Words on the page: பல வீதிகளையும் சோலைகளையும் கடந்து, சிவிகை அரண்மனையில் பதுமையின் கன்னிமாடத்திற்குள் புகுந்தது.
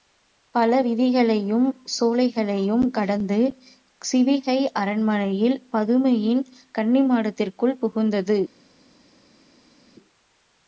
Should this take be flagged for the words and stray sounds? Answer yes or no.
no